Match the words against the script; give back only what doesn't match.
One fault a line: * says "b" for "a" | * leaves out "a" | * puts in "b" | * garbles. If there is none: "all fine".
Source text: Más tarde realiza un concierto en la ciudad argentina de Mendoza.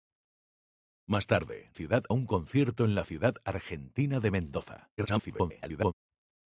* says "ciudad" for "realiza"
* garbles